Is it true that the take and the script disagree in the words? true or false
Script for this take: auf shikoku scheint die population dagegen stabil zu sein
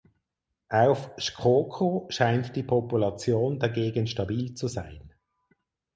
false